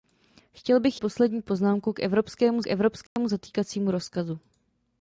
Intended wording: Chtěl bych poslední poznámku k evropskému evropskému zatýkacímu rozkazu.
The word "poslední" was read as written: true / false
true